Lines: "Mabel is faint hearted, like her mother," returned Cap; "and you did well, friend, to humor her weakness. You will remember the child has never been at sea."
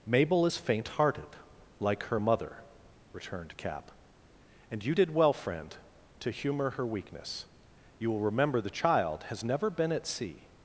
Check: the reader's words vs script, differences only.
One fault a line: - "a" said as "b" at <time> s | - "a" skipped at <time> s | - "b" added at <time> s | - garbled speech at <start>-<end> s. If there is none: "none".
none